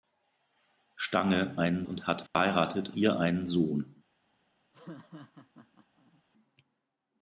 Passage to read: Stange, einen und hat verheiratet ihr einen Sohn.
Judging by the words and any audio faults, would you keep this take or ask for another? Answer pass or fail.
fail